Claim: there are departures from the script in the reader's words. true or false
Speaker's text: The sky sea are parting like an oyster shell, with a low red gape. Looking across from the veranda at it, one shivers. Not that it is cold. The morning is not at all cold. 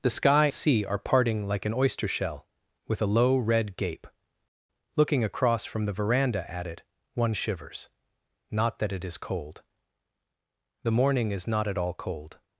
false